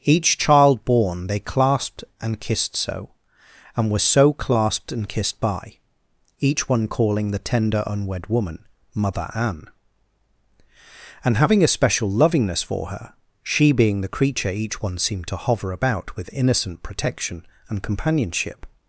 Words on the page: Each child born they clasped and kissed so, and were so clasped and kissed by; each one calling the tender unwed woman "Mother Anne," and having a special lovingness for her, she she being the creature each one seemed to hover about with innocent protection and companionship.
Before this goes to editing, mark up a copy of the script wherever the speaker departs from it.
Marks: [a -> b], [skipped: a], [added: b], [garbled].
Each child born they clasped and kissed so, and were so clasped and kissed by; each one calling the tender unwed woman "Mother Anne," and having a special lovingness for her, she [skipped: she] being the creature each one seemed to hover about with innocent protection and companionship.